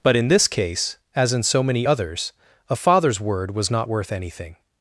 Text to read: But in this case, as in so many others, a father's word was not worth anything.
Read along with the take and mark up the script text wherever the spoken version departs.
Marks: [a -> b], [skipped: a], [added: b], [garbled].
But in this case, as in so many others, a father's word was not worth anything.